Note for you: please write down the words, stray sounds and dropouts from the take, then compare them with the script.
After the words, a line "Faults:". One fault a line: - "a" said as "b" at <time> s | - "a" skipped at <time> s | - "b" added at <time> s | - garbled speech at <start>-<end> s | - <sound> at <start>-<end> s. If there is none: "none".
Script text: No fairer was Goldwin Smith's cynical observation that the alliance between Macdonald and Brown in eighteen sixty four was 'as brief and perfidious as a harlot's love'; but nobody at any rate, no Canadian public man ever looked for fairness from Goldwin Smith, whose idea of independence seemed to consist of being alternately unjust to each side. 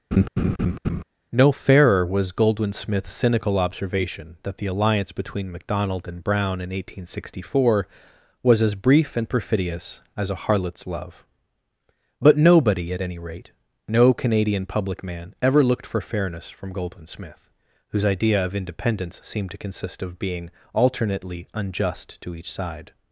No fairer was Goldwin Smith's cynical observation that the alliance between Macdonald and Brown in eighteen sixty four was 'as brief and perfidious as a harlot's love'; but nobody at any rate, no Canadian public man ever looked for fairness from Goldwin Smith, whose idea of independence seemed to consist of being alternately unjust to each side.
Faults:
- laugh at 0.1-1.0 s